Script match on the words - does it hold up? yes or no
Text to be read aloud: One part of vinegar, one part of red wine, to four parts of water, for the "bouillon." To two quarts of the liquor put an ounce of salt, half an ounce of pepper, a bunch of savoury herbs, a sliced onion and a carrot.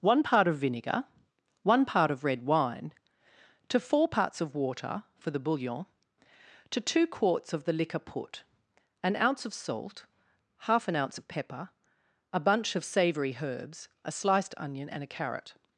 yes